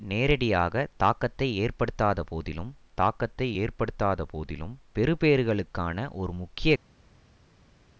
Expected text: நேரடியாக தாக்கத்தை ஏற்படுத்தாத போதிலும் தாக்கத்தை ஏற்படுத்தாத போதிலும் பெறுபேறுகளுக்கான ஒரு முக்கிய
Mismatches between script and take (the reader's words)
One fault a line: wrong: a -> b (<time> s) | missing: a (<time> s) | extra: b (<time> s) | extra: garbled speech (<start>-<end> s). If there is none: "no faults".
no faults